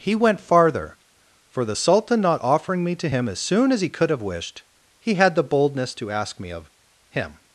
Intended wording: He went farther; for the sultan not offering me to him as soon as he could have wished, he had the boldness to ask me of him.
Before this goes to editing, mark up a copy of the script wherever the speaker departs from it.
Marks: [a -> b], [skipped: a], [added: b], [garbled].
He went farther; for the sultan not offering me to him as soon as he could have wished, he had the boldness to ask me of him.